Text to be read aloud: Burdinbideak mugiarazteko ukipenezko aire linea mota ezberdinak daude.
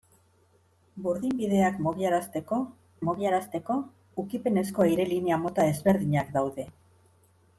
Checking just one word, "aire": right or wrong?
right